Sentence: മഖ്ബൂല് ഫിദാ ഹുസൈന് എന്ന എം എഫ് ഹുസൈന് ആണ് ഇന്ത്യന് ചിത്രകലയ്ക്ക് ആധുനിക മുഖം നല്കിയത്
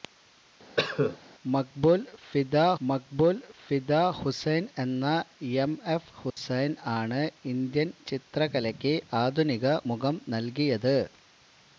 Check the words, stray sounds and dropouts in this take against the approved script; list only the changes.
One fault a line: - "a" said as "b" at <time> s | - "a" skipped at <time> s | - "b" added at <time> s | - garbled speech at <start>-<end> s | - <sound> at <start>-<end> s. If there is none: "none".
- cough at 0.8-1.2 s
- "മഖ്ബൂല് ഫിദാ" added at 2.8 s
- dropout at 6.3-6.4 s